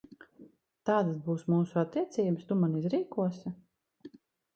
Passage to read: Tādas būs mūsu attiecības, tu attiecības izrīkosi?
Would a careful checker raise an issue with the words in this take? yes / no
yes